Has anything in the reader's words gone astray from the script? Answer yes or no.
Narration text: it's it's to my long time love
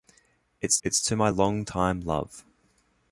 no